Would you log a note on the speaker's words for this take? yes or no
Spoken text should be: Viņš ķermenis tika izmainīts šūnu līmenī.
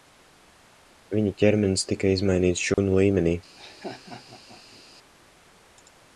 yes